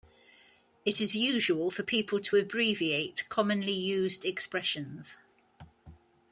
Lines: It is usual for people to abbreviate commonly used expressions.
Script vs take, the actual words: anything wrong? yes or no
no